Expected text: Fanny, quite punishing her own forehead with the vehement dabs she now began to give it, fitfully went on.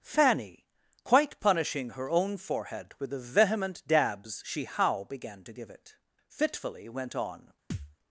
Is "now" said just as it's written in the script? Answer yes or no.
no